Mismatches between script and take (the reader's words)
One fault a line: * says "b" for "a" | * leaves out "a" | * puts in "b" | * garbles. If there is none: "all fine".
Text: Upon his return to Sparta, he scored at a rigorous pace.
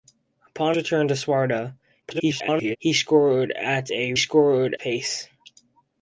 * leaves out "his"
* garbles
* says "scored" for "rigorous"